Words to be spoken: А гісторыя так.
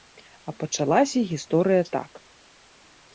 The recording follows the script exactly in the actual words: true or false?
false